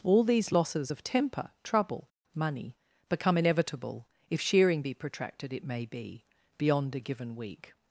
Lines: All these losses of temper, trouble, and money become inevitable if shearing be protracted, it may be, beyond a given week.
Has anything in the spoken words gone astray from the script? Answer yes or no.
yes